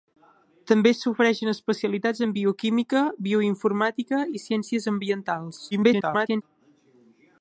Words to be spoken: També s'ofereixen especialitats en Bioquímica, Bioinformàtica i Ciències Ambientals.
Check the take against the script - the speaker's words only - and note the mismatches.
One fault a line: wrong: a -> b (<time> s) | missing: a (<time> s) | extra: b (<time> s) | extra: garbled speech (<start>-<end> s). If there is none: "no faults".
extra: garbled speech (5.7-6.4 s)